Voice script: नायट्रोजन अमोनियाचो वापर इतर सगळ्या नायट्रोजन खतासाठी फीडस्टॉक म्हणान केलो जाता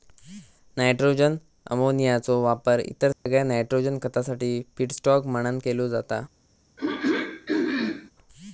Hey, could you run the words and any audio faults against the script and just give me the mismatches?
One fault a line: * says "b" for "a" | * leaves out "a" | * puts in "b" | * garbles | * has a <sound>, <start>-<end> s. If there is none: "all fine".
* has a dropout, 3.1-3.3 s
* has a throat clearing, 6.8-8.1 s